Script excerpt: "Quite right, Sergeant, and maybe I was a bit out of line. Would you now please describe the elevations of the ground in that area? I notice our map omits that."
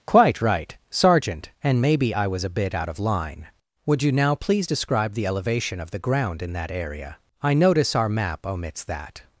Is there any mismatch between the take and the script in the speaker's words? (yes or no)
yes